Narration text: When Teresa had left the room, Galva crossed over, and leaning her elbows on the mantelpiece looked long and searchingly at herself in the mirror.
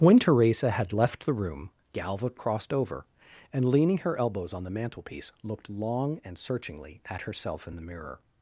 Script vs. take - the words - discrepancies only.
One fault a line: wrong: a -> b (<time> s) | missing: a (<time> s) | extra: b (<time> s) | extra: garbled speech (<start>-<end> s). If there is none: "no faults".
no faults